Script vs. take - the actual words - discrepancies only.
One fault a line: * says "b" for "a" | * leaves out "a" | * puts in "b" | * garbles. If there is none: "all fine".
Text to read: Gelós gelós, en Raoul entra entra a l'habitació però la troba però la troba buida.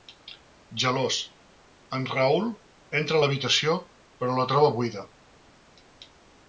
* leaves out "gelós"
* leaves out "entra"
* leaves out "però la troba"